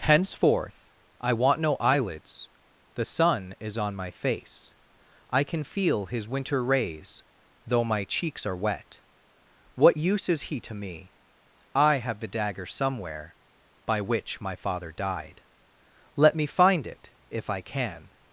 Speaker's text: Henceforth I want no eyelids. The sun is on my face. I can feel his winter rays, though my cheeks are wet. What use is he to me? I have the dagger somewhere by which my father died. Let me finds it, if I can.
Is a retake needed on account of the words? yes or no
yes